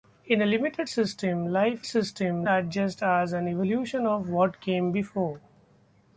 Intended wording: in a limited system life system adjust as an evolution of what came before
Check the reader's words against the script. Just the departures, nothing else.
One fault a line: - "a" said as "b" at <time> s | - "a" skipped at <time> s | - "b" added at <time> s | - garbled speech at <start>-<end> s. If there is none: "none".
none